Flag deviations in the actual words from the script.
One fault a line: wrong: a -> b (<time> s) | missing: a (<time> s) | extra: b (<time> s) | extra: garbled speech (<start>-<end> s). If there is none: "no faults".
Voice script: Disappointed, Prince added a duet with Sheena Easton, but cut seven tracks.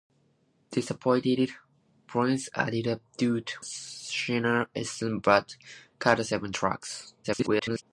missing: with (3.5 s)
extra: garbled speech (7.2-7.8 s)